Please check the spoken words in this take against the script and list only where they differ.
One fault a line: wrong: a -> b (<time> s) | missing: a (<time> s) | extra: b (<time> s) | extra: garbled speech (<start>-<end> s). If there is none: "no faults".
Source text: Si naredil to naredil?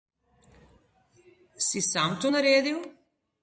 wrong: naredil -> sam (1.8 s)